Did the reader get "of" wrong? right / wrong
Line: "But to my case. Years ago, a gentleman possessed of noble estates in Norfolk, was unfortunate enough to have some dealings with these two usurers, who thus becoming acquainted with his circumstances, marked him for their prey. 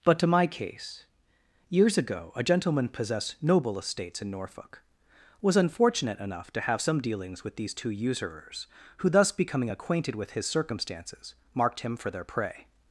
wrong